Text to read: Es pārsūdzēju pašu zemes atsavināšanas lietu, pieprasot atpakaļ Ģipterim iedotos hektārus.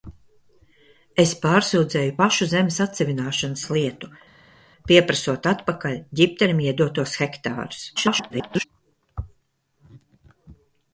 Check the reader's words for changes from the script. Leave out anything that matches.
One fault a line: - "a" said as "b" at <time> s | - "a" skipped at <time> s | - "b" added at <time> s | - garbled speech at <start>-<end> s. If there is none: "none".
- garbled speech at 8.0-8.6 s